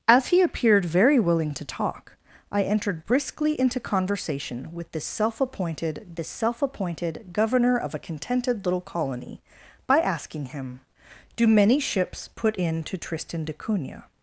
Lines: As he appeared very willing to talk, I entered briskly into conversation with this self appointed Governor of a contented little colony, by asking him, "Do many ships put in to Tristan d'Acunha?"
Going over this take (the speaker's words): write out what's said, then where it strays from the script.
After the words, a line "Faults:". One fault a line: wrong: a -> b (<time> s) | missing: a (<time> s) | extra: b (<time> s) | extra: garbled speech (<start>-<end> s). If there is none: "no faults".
As he appeared very willing to talk, I entered briskly into conversation with this self appointed this self appointed Governor of a contented little colony, by asking him, "Do many ships put in to Tristan d'Acunha?"
Faults:
extra: this self appointed (6.1 s)